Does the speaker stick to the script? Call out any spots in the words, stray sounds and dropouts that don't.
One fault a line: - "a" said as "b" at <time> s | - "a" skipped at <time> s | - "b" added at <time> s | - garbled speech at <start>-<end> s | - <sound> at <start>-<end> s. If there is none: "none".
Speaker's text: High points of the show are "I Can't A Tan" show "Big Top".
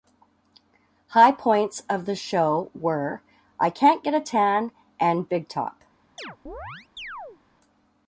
- "are" said as "were" at 2.7 s
- "Get" added at 4.0 s
- "show" said as "and" at 5.0 s
- chirp at 6.2-7.4 s